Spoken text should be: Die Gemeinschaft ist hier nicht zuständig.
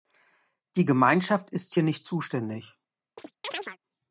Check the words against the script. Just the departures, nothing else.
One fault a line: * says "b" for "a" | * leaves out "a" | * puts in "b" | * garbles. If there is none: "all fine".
all fine